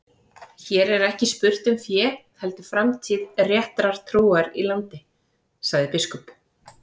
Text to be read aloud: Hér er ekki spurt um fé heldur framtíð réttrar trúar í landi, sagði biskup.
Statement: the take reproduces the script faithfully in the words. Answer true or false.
true